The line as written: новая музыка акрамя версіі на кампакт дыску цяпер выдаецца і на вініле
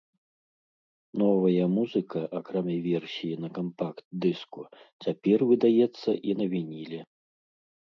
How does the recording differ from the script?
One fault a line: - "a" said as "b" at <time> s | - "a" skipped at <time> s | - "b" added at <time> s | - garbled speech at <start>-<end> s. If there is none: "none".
none